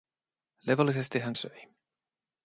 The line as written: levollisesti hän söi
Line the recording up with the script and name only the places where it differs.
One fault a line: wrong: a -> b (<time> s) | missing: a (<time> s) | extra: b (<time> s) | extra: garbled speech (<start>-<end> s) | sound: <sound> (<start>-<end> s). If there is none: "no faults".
no faults